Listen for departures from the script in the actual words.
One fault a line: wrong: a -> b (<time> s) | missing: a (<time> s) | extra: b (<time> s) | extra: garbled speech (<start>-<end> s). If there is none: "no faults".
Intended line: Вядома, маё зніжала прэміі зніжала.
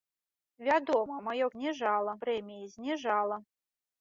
no faults